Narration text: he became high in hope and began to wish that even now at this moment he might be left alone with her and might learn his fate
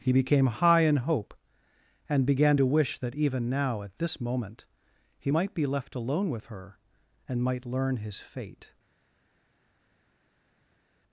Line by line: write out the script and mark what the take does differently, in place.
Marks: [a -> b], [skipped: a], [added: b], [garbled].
he became high in hope and began to wish that even now at this moment he might be left alone with her and might learn his fate